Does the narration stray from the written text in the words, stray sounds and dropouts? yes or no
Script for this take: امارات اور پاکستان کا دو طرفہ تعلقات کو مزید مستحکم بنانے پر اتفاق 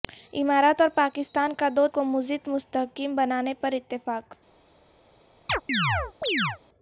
yes